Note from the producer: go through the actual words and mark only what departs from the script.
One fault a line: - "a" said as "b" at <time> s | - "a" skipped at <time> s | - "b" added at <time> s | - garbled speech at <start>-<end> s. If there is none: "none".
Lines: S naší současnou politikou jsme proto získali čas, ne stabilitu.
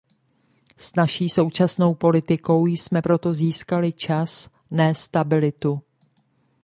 none